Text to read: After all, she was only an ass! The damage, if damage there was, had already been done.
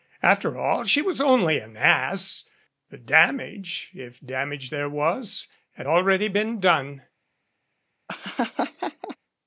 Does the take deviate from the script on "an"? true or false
false